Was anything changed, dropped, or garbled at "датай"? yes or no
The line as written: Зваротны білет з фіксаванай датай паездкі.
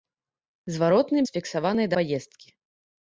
yes